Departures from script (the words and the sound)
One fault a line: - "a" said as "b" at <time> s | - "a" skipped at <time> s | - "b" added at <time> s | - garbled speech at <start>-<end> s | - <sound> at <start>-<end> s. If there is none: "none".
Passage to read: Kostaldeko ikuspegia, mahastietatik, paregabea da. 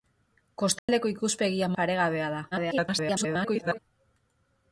- dropout at 0.8-0.9 s
- "mahastietatik" skipped at 1.7 s
- garbled speech at 2.5-3.8 s